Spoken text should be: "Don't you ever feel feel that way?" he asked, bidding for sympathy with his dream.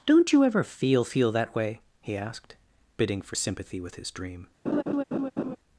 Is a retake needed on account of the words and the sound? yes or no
yes